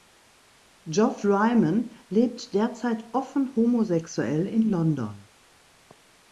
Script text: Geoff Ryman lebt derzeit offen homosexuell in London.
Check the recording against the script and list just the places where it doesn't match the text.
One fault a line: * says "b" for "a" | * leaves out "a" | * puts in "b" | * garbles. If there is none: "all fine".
all fine